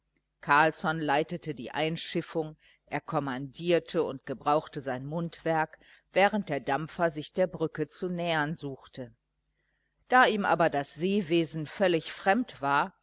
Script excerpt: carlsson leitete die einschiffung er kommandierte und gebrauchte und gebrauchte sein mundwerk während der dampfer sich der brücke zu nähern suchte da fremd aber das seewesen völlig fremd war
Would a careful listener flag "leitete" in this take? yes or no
no